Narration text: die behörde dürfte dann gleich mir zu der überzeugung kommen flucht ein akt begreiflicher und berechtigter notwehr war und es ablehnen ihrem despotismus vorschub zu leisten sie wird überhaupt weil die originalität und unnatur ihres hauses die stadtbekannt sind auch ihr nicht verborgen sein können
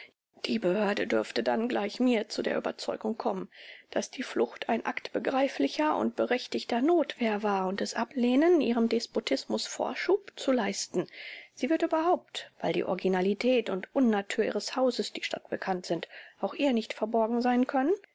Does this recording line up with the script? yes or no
no